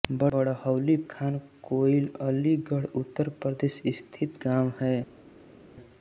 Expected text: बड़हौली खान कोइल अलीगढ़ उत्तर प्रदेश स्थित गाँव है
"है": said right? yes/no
yes